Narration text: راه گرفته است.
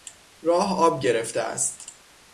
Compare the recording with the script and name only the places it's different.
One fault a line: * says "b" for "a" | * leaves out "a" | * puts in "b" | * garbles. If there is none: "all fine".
* puts in "آب"